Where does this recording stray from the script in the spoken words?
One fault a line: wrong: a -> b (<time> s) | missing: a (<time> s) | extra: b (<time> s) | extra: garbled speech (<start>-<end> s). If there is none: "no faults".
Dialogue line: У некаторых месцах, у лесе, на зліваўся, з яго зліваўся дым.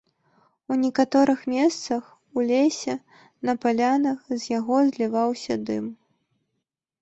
wrong: зліваўся -> палянах (3.7 s)